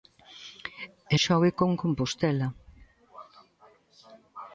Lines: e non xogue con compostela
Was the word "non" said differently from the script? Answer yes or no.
yes